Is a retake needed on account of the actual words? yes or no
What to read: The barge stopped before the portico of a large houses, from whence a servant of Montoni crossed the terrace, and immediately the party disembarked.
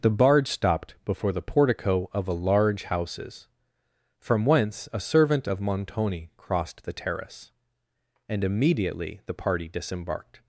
no